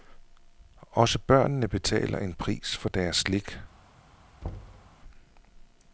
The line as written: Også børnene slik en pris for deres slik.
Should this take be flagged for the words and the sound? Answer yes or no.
yes